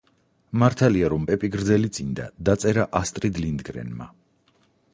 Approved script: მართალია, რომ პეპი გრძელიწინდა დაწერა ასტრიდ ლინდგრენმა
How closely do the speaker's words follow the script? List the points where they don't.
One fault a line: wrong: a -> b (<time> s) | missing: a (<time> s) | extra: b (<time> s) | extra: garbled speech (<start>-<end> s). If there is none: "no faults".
no faults